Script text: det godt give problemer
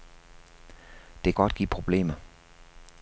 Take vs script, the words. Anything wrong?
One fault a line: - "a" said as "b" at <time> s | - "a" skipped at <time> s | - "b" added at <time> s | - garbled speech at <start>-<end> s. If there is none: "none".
none